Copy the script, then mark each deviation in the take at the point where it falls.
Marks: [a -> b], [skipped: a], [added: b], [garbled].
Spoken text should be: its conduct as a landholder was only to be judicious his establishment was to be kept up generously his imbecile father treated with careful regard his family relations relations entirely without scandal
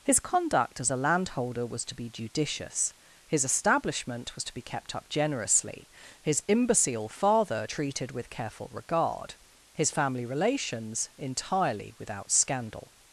[its -> his] conduct as a landholder was [skipped: only] to be judicious his establishment was to be kept up generously his imbecile father treated with careful regard his family relations [skipped: relations] entirely without scandal